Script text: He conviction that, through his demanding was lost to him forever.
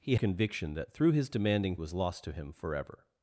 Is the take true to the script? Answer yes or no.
yes